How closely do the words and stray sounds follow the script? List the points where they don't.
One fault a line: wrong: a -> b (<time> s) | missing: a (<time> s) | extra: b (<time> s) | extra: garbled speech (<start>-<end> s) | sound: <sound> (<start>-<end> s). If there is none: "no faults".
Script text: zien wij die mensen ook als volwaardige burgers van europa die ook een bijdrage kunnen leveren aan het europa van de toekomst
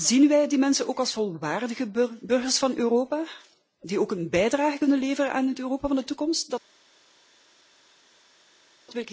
no faults